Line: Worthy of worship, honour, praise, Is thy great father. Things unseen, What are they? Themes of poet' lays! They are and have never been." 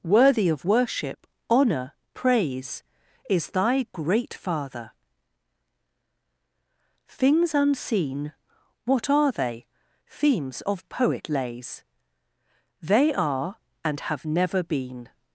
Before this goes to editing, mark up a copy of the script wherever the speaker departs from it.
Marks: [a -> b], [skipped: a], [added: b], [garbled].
Worthy of worship, honour, praise, Is thy great father. Things unseen, What are they? Themes of poet' lays! They are and have never been."